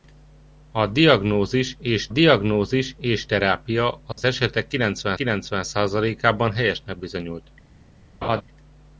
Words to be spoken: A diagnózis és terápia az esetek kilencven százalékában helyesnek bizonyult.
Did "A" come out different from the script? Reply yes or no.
no